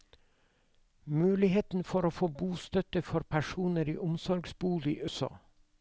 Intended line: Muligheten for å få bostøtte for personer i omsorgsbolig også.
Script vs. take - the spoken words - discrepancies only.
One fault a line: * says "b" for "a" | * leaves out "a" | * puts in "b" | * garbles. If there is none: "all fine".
all fine